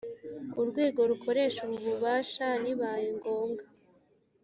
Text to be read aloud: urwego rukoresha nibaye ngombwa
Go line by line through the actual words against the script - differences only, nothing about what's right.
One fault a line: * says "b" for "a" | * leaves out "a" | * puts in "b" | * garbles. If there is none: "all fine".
* puts in "ubu bubasha"